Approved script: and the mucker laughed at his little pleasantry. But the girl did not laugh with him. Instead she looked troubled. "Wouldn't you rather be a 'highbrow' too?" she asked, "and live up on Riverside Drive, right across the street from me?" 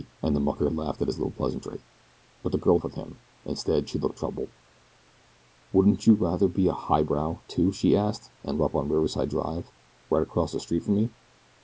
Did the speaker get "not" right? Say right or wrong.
wrong